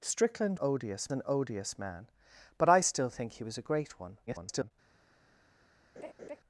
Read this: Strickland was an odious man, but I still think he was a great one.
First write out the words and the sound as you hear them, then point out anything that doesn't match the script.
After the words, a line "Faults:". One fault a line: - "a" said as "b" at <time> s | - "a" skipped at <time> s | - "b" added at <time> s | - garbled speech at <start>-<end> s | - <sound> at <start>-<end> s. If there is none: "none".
Strickland odious an odious man, but I still think he was a great one. [garbled]
Faults:
- "was" said as "odious" at 0.6 s
- garbled speech at 4.3-4.7 s
- laugh at 6.0-6.4 s